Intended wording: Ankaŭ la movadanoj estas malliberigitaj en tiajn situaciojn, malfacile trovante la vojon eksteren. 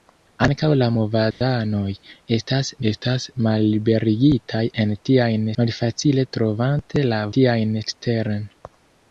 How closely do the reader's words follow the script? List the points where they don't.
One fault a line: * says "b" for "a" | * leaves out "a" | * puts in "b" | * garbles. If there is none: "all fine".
* puts in "estas"
* leaves out "situaciojn"
* says "tiajn" for "vojon"